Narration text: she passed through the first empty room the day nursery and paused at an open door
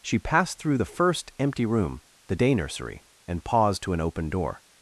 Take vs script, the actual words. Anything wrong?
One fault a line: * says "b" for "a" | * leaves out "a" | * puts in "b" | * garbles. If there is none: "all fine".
* says "to" for "at"